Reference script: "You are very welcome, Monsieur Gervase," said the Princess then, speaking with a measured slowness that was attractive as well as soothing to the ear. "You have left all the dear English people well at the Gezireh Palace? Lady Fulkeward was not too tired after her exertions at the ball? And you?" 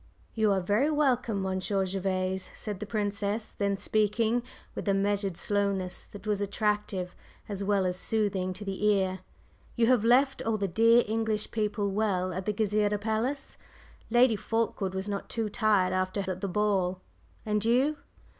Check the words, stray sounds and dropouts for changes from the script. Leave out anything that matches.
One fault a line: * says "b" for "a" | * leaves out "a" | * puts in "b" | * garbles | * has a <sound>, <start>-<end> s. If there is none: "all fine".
* leaves out "her exertions"